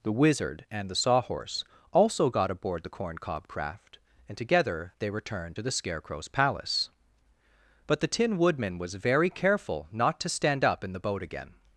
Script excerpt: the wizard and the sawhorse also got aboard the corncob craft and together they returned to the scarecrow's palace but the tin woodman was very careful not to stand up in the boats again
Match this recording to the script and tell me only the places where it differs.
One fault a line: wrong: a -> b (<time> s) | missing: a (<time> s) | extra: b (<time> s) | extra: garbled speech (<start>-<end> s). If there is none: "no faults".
wrong: boats -> boat (11.0 s)